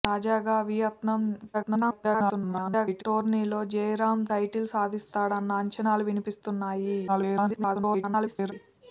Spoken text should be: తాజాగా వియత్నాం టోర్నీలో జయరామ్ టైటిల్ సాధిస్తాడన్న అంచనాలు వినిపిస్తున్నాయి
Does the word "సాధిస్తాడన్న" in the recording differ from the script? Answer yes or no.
no